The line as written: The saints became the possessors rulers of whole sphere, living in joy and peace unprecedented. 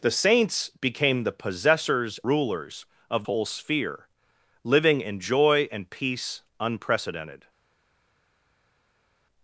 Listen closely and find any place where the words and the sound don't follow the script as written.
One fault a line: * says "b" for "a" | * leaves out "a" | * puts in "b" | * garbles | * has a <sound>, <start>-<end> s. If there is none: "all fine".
all fine